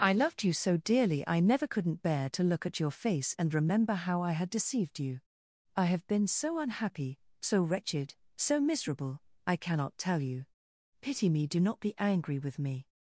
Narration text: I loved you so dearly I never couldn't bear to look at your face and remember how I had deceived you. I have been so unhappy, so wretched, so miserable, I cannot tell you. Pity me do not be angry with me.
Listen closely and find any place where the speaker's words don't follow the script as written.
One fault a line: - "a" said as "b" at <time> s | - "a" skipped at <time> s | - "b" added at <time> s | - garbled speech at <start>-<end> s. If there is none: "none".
none